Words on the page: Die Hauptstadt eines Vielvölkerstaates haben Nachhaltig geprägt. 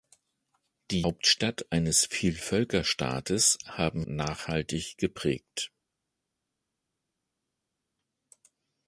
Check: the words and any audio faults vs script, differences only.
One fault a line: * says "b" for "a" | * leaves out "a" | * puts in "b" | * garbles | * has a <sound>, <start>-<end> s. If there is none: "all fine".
all fine